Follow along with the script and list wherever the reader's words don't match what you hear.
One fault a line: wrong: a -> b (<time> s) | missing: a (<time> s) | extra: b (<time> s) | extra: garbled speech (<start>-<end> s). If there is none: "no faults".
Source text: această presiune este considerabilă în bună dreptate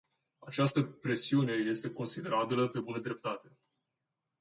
wrong: în -> pe (2.7 s)